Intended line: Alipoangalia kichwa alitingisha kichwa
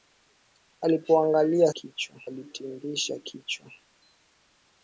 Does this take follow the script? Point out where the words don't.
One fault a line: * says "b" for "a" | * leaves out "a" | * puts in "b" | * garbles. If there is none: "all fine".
all fine